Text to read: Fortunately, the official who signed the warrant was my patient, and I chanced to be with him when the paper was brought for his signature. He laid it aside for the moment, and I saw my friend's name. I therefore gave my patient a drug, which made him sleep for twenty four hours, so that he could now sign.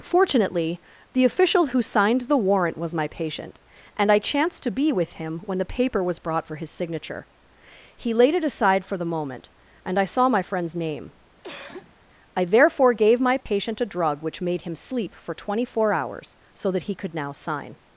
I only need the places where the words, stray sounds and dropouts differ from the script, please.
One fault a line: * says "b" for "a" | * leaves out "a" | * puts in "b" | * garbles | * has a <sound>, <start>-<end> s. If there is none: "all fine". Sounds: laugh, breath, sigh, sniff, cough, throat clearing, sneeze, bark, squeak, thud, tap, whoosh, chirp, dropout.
* has a cough, 11.4-12.0 s
* has a dropout, 13.4-13.5 s